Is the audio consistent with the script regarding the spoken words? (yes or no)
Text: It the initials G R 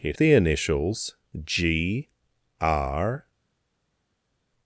yes